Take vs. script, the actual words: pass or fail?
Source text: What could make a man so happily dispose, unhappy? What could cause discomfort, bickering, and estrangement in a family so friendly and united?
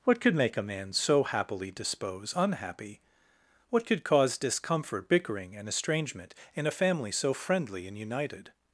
pass